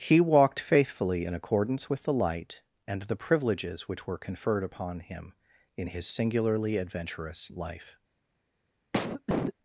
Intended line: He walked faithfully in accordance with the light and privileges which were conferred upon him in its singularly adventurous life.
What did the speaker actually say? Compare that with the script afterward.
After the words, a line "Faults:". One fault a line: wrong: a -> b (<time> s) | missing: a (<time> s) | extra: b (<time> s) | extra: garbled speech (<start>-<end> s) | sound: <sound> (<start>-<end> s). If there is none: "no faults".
He walked faithfully in accordance with the light and the privileges which were conferred upon him in his singularly adventurous life.
Faults:
extra: the (3.0 s)
wrong: its -> his (5.9 s)
sound: cough (8.9-9.5 s)